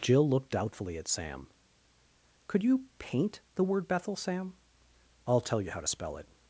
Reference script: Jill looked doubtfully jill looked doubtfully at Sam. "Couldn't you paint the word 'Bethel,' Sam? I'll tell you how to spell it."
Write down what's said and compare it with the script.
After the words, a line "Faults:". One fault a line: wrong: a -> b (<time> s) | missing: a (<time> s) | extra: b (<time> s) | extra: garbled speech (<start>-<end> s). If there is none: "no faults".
Jill looked doubtfully at Sam. "Could you paint the word 'Bethel,' Sam? I'll tell you how to spell it."
Faults:
missing: jill looked doubtfully (1.0 s)
wrong: Couldn't -> Could (2.5 s)